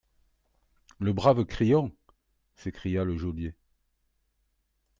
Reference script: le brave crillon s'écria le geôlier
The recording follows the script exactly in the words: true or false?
true